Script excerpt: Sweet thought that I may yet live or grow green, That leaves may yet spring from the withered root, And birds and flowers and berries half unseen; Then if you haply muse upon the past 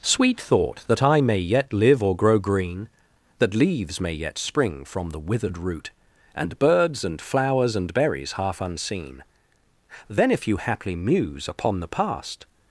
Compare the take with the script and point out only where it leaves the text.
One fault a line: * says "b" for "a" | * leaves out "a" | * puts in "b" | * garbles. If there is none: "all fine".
all fine